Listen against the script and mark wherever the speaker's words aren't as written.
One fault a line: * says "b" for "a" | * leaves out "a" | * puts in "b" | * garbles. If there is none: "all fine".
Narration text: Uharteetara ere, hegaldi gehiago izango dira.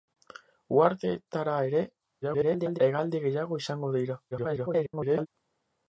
* garbles
* garbles